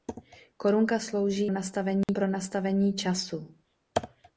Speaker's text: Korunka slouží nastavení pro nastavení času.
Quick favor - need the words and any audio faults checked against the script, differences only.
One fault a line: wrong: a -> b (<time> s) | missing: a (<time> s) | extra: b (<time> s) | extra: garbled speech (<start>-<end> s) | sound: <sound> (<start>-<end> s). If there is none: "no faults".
sound: dropout (2.0-2.1 s)